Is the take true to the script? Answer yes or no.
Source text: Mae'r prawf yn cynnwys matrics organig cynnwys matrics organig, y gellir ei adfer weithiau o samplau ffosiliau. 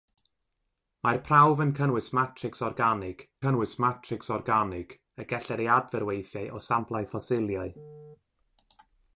yes